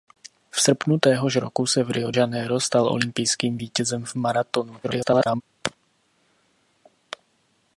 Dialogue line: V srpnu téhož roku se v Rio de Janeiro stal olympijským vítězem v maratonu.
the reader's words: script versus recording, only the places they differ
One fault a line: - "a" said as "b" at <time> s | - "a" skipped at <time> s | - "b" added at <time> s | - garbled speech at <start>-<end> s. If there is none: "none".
- "de" skipped at 2.1 s
- garbled speech at 4.8-5.4 s